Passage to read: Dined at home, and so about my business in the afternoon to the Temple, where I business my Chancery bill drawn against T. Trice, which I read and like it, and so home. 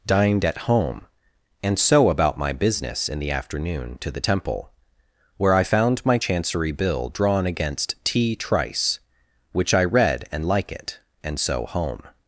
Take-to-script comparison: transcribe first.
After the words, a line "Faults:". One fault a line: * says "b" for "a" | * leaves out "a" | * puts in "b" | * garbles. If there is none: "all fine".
Dined at home, and so about my business in the afternoon to the Temple, where I found my Chancery bill drawn against T. Trice, which I read and like it, and so home.
Faults:
* says "found" for "business"